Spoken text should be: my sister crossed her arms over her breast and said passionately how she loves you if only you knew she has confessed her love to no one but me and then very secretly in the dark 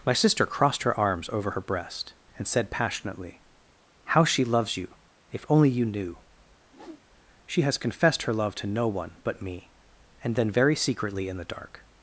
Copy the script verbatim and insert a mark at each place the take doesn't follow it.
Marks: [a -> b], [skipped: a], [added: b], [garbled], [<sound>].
my sister crossed her arms over her breast and said passionately how she loves you if only you knew [whoosh] she has confessed her love to no one but me and then very secretly in the dark